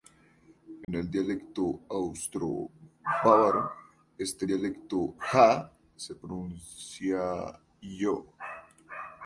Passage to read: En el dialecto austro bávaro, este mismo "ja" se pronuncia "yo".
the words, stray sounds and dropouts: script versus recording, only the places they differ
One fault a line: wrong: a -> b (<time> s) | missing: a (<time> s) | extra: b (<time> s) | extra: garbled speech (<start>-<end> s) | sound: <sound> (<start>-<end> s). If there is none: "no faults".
sound: dropout (0.8-0.9 s)
wrong: mismo -> dialecto (4.5 s)